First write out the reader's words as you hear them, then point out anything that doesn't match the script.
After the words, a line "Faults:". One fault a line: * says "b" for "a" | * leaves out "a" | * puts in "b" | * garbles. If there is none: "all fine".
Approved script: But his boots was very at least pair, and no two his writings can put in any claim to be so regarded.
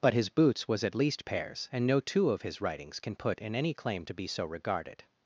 But his boots was at least pairs, and no two of his writings can put in any claim to be so regarded.
Faults:
* leaves out "very"
* says "pairs" for "pair"
* puts in "of"